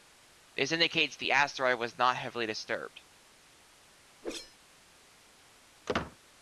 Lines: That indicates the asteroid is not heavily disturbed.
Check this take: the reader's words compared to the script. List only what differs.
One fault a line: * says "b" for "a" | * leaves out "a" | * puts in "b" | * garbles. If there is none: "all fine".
* says "This" for "That"
* says "was" for "is"